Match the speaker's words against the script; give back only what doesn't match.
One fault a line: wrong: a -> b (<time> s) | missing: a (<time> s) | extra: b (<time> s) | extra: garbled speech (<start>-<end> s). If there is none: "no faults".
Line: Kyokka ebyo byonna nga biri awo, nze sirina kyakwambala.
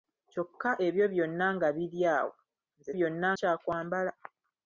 wrong: sirina -> byonna (3.0 s)